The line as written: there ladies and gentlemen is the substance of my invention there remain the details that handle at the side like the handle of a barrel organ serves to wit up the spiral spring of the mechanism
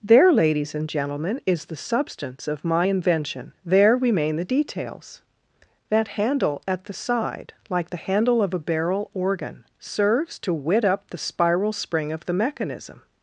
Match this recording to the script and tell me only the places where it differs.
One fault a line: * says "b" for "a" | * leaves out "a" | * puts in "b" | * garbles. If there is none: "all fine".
all fine